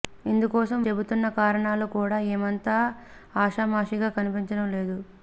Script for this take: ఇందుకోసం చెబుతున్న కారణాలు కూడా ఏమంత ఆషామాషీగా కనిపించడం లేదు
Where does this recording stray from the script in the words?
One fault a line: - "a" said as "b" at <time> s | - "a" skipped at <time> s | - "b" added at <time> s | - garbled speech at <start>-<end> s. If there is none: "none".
none